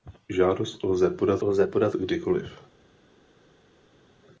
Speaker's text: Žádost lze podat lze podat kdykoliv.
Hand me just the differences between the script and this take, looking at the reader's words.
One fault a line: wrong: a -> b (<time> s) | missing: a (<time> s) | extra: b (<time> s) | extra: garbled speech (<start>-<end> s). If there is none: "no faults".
no faults